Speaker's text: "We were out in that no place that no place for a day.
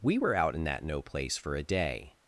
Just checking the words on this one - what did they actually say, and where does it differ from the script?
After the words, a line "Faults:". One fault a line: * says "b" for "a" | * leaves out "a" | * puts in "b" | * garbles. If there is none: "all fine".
"We were out in that no place for a day.
Faults:
* leaves out "that no place"